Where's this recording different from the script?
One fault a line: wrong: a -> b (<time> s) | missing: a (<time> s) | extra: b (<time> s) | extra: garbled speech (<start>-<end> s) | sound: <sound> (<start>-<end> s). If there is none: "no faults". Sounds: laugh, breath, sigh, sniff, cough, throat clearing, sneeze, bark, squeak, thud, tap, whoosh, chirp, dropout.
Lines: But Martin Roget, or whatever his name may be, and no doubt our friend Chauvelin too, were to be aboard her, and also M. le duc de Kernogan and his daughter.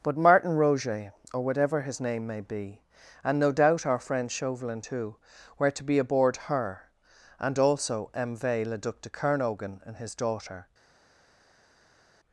extra: v (8.4 s)